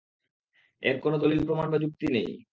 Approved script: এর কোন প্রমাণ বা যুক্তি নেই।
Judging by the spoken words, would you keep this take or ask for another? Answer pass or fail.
fail